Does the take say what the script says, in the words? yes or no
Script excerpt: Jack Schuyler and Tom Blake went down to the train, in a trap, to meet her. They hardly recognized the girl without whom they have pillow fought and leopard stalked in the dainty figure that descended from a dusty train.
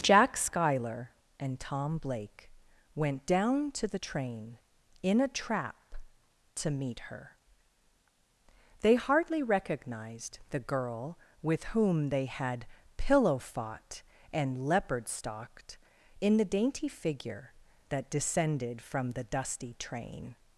no